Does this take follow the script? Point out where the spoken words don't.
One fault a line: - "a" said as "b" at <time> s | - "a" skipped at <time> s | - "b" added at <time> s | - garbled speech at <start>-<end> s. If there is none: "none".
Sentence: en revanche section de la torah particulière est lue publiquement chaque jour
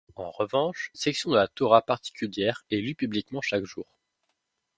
none